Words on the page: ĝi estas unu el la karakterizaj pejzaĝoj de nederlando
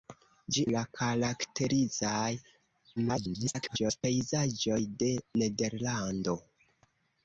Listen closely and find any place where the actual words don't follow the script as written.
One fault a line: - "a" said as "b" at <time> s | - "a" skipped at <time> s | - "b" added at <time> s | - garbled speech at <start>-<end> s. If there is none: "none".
- "estas unu el" skipped at 0.6 s
- garbled speech at 3.0-4.0 s